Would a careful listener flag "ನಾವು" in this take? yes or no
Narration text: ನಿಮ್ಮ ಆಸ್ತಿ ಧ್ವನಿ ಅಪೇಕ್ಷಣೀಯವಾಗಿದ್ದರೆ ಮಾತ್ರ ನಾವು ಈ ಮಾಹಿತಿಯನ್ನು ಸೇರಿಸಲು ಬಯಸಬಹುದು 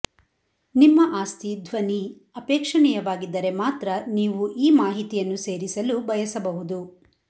yes